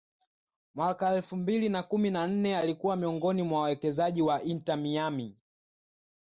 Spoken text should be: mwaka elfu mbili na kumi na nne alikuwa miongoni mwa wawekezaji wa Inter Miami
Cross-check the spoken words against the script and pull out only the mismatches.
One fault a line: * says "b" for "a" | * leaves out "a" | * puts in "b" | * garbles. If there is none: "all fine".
all fine